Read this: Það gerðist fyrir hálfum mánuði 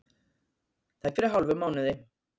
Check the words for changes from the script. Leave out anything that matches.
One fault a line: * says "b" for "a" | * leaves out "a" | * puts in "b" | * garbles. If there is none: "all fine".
* leaves out "gerðist"